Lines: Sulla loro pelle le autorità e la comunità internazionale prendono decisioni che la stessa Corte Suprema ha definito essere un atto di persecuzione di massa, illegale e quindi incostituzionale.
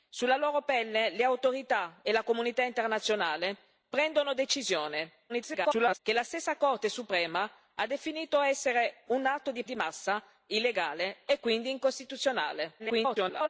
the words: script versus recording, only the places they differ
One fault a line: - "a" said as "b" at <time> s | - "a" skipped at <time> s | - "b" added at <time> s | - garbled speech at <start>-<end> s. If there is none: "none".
- garbled speech at 5.3-6.0 s
- "persecuzione" skipped at 9.6 s
- garbled speech at 12.8-13.5 s